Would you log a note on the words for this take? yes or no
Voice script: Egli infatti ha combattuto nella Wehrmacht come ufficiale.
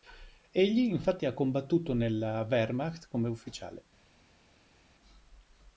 no